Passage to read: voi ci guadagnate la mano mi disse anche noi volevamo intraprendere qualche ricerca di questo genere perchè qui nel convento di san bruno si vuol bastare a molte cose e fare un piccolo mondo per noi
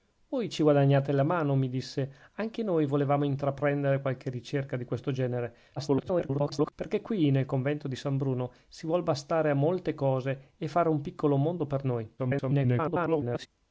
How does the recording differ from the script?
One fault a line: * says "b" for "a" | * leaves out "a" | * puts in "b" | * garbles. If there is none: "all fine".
* garbles
* garbles